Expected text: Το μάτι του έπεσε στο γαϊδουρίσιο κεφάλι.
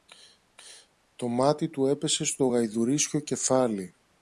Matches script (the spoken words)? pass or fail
pass